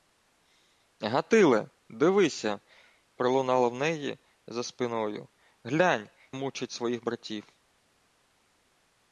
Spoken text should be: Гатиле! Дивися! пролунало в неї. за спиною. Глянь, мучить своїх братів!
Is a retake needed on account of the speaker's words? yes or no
no